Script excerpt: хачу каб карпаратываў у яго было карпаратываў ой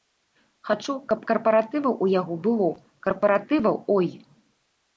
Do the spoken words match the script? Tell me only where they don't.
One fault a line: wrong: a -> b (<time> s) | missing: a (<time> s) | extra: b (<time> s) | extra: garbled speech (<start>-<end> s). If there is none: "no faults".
no faults